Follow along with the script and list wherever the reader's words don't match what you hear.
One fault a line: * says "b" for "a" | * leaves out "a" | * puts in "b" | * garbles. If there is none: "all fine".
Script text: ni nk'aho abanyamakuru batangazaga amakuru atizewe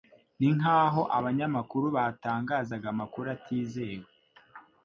all fine